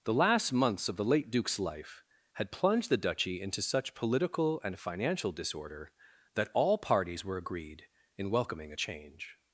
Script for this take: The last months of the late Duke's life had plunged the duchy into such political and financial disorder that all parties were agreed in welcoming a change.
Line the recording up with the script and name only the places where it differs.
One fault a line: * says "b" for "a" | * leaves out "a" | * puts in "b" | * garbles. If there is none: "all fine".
all fine